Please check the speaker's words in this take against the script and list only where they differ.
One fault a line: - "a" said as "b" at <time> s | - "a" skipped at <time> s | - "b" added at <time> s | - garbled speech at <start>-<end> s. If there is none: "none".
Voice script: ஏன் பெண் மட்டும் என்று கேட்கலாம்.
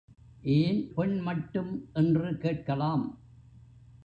none